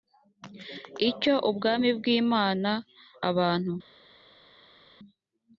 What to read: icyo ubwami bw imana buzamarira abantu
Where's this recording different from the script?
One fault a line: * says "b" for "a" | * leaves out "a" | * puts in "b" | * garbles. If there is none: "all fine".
* leaves out "buzamarira"